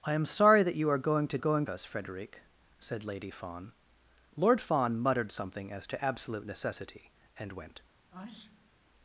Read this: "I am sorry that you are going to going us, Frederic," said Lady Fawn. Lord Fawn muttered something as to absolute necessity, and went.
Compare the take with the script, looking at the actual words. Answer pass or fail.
pass